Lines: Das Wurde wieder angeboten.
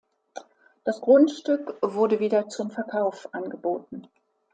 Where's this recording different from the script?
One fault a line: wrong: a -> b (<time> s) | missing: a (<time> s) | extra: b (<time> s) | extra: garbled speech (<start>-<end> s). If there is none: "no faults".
extra: Grundstück (1.0 s)
extra: zum Verkauf (2.5 s)